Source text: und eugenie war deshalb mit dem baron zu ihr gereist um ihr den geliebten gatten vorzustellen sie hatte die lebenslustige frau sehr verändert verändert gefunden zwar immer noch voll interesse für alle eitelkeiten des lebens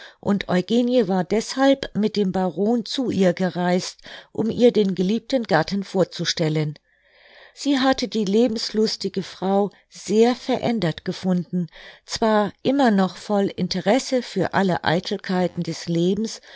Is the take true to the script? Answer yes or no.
no